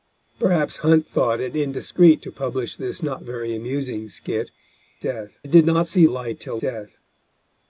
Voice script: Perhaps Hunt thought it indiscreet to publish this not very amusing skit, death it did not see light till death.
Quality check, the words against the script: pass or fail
pass